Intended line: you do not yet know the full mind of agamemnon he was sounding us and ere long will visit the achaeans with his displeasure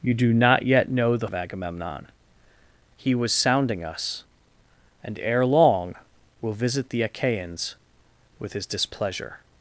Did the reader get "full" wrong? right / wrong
wrong